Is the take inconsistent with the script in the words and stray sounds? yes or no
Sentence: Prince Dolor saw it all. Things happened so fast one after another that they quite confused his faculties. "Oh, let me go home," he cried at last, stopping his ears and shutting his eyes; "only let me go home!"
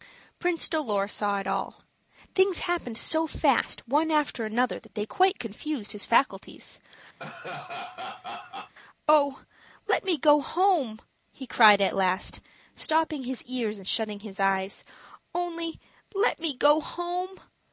yes